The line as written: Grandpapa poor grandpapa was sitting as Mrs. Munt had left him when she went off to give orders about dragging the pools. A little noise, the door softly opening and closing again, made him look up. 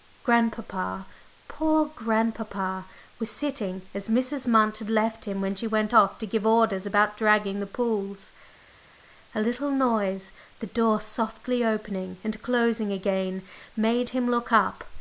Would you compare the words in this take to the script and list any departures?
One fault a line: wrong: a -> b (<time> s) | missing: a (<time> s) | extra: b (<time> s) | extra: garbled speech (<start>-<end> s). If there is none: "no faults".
no faults